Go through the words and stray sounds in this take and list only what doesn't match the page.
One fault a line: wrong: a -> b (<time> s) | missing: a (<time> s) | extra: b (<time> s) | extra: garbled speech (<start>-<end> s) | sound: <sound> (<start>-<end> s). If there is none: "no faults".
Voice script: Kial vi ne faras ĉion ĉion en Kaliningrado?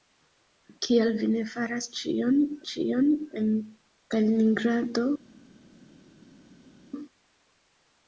no faults